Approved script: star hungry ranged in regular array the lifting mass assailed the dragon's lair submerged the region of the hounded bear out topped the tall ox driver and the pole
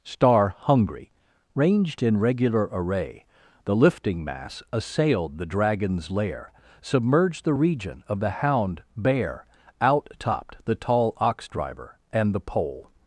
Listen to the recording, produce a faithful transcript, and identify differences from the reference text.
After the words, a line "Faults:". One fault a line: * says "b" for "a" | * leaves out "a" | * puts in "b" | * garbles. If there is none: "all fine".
star hungry ranged in regular array the lifting mass assailed the dragon's lair submerged the region of the hound bear out topped the tall ox driver and the pole
Faults:
* says "hound" for "hounded"